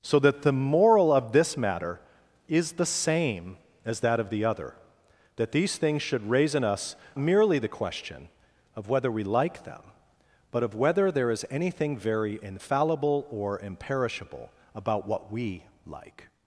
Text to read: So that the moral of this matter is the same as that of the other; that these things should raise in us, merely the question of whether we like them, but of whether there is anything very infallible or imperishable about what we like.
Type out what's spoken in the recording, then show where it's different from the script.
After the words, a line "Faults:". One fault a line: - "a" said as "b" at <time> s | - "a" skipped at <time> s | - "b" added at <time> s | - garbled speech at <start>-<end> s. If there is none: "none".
So that the moral of this matter is the same as that of the other; that these things should raise in us, merely the question of whether we like them, but of whether there is anything very infallible or imperishable about what we like.
Faults:
none